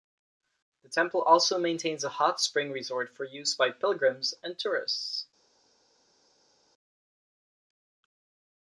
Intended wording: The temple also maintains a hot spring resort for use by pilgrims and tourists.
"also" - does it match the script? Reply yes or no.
yes